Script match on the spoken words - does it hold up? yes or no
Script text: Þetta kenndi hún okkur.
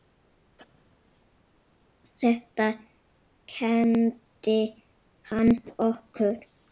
no